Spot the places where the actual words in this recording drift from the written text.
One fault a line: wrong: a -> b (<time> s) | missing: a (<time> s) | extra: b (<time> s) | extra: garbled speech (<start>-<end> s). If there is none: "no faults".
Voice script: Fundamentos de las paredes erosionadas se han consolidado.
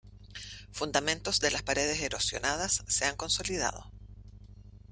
no faults